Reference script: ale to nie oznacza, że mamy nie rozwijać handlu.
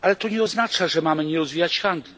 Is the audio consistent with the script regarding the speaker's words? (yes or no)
yes